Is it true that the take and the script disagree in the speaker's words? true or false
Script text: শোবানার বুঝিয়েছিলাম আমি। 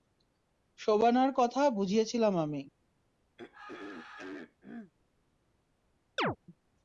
true